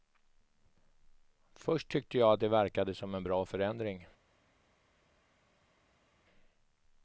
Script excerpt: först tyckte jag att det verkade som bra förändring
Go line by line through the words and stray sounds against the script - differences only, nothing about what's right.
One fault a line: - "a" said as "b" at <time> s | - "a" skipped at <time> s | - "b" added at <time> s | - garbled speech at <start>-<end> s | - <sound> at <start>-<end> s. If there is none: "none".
- "en" added at 3.1 s